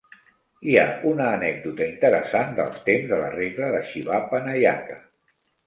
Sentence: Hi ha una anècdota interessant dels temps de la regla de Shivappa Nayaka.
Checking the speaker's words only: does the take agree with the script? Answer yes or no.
yes